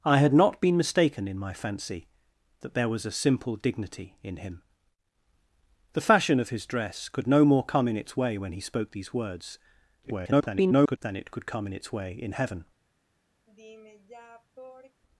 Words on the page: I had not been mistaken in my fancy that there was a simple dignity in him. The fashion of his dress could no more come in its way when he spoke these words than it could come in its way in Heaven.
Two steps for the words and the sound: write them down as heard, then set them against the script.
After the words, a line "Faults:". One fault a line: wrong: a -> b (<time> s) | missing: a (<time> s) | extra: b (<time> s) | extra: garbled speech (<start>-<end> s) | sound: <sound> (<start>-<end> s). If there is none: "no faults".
I had not been mistaken in my fancy that there was a simple dignity in him. The fashion of his dress could no more come in its way when he spoke these words [garbled] than it could come in its way in Heaven.
Faults:
extra: garbled speech (10.0-11.0 s)
sound: sigh (13.5-15.0 s)